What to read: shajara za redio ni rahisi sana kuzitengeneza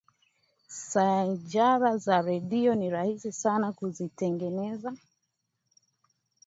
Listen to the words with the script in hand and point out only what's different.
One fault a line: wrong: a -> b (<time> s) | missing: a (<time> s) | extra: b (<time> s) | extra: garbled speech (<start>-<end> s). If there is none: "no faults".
no faults